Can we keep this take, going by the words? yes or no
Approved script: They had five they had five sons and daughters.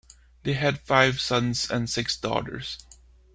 no